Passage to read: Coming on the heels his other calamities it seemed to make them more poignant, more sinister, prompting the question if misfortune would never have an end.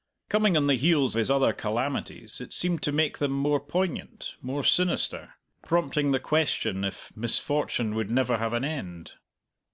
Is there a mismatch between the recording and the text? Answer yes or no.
no